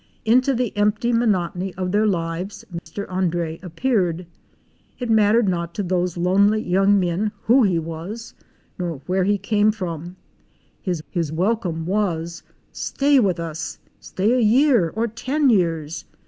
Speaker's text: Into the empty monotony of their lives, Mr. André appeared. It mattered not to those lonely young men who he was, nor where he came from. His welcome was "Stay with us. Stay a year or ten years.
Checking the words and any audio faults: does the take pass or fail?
fail